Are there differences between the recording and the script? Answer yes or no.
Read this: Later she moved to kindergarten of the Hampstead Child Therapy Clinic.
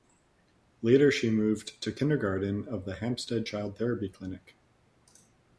no